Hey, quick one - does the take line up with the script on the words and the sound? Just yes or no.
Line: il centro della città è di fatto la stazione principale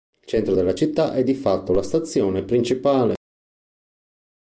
yes